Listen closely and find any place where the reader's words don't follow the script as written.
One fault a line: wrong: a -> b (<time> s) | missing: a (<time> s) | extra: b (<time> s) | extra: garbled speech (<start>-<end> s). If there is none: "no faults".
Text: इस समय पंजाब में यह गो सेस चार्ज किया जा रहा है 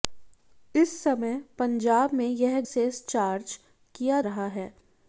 missing: गो (2.6 s)
missing: जा (4.2 s)